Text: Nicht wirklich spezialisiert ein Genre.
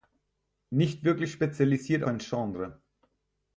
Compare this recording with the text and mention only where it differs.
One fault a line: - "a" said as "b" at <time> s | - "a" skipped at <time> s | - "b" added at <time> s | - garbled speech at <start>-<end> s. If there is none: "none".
none